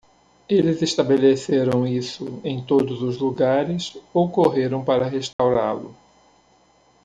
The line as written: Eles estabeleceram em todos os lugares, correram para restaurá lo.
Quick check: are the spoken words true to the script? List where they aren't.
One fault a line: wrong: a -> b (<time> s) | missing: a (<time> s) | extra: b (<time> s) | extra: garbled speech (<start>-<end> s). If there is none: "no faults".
extra: isso (1.9 s)
extra: ou (4.1 s)